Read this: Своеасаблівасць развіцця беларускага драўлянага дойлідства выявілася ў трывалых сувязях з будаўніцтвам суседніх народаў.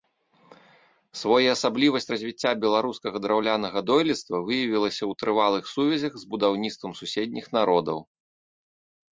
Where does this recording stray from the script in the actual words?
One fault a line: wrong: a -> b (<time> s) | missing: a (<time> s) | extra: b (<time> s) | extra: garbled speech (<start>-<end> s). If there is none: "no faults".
no faults